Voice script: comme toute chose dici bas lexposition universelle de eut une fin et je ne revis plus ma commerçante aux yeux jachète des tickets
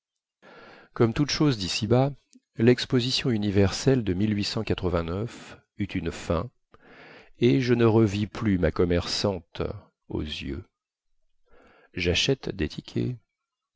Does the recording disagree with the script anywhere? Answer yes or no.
no